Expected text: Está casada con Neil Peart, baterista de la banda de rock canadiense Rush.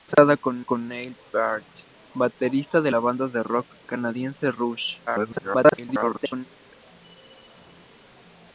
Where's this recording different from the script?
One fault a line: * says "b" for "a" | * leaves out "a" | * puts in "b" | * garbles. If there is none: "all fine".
* puts in "con"
* garbles